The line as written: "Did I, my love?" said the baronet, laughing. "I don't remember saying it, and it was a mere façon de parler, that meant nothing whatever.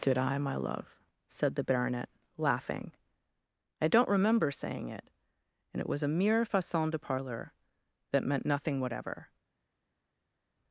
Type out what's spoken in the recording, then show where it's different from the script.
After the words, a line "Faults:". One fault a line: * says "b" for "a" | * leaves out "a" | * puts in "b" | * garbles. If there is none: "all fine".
"Did I, my love?" said the baronet, laughing. "I don't remember saying it, and it was a mere façon de parler, that meant nothing whatever.
Faults:
all fine